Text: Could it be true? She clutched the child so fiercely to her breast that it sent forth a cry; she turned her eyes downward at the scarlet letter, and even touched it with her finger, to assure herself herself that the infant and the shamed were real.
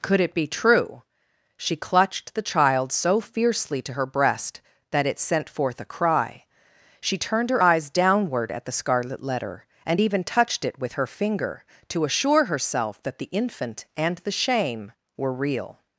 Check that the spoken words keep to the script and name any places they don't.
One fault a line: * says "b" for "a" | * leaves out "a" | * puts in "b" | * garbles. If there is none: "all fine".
* leaves out "herself"
* says "shame" for "shamed"